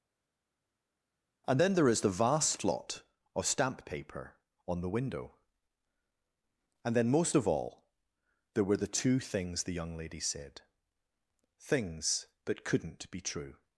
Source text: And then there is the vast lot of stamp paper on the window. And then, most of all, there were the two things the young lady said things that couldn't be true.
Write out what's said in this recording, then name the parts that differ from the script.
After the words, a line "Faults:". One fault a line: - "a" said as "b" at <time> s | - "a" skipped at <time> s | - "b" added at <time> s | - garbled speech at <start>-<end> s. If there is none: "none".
And then there is the vast lot of stamp paper on the window. And then, most of all, there were the two things the young lady said things that couldn't be true.
Faults:
none